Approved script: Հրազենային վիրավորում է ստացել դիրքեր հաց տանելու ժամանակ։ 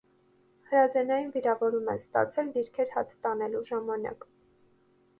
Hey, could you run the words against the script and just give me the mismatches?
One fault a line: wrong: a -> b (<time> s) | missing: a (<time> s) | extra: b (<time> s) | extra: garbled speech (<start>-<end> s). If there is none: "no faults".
no faults